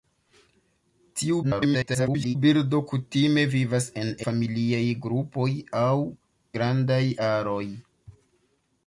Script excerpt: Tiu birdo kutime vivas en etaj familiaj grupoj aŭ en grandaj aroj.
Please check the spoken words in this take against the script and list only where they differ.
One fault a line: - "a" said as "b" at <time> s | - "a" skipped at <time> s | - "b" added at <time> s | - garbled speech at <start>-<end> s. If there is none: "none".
- garbled speech at 1.4-2.4 s
- "etaj" skipped at 4.1 s
- "en" skipped at 6.0 s